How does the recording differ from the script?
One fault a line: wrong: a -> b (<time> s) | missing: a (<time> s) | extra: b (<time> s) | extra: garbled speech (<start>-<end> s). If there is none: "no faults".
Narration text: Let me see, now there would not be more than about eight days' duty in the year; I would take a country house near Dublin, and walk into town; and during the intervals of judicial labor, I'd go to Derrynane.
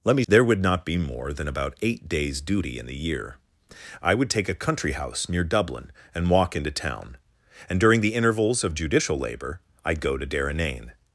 missing: see now (0.2 s)